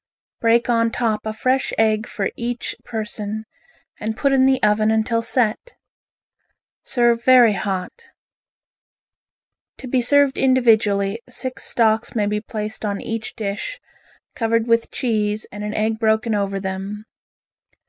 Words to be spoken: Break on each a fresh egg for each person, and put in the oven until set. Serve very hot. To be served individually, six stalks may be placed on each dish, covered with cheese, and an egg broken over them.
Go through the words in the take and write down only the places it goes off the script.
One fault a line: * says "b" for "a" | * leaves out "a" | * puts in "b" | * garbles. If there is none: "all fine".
* says "top" for "each"